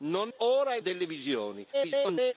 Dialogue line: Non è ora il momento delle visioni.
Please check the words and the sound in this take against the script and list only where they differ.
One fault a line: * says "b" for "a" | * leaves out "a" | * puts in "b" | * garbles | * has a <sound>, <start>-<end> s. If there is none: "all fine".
* leaves out "è"
* leaves out "momento"
* garbles